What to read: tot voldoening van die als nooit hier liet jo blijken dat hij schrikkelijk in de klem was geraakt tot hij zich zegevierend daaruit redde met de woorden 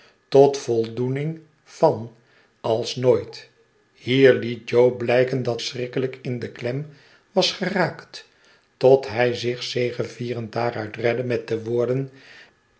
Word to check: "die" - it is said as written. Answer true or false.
false